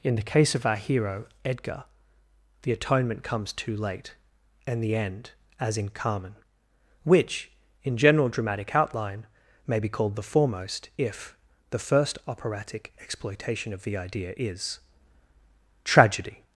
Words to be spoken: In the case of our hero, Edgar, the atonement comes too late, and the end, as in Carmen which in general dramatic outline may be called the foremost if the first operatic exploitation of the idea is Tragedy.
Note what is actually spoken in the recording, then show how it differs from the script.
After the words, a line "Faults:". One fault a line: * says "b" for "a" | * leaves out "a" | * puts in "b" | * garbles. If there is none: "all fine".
In the case of our hero, Edgar, the atonement comes too late, and the end, as in Carmen which in general dramatic outline may be called the foremost if the first operatic exploitation of the idea is Tragedy.
Faults:
all fine